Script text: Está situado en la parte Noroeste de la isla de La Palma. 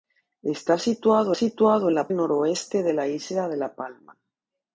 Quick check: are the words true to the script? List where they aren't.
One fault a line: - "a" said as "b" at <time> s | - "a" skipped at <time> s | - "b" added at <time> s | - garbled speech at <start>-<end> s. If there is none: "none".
- "situado" added at 1.3 s
- "parte" skipped at 2.1 s